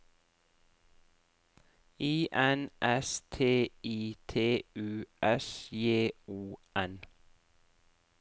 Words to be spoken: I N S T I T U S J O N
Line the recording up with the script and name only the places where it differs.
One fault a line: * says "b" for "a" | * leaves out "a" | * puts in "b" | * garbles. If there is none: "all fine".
all fine